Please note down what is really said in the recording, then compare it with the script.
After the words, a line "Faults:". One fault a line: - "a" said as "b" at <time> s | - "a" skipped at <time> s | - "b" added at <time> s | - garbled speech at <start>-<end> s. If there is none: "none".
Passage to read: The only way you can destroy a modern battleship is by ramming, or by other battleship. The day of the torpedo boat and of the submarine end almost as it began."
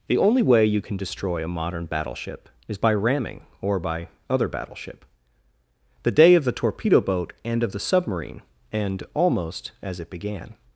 The only way you can destroy a modern battleship is by ramming, or by other battleship. The day of the torpedo boat and of the submarine end almost as it began."
Faults:
none